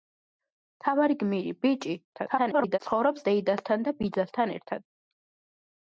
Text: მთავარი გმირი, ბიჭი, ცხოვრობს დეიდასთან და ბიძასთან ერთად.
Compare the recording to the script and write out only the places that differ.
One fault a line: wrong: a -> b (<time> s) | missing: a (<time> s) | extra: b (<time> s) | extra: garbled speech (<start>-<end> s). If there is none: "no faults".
extra: garbled speech (2.1-2.8 s)